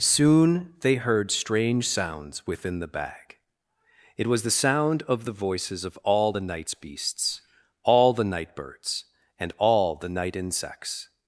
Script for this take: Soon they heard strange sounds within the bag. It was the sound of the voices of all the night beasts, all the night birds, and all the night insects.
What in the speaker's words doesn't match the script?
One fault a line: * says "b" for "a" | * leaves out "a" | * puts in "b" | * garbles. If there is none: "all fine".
* says "nights" for "night"